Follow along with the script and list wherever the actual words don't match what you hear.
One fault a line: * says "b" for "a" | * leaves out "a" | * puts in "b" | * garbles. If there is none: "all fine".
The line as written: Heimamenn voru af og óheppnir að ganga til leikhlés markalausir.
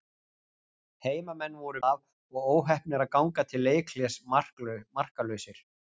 all fine